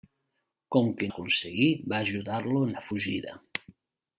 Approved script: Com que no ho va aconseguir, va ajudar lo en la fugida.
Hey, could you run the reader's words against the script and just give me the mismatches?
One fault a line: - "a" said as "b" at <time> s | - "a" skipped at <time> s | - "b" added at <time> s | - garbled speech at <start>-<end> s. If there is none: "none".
- "no ho va" skipped at 1.1 s